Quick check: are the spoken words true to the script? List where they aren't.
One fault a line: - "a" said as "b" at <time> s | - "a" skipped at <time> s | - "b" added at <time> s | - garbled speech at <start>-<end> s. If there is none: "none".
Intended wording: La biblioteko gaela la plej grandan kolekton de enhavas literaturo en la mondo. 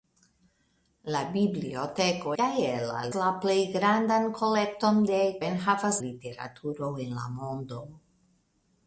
none